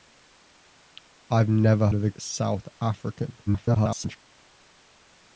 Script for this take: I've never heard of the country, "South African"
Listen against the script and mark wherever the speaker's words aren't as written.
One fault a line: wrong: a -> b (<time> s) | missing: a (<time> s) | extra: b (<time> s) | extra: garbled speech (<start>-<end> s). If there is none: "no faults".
missing: heard (1.9 s)
missing: country (2.1 s)
extra: garbled speech (3.5-4.2 s)